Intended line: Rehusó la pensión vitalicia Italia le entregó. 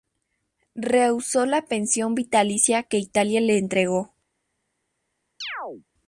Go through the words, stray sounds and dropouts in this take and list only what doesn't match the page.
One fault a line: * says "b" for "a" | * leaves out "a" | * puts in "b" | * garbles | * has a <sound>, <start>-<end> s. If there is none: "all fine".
* puts in "que"
* has a chirp, 5.4-5.8 s